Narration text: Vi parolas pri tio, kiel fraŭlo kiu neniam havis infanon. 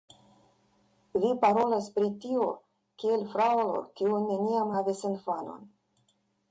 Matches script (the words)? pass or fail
pass